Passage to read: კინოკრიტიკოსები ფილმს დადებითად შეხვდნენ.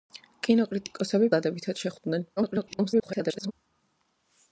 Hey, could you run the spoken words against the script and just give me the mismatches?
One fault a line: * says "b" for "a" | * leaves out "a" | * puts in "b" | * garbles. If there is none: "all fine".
* leaves out "ფილმს"
* garbles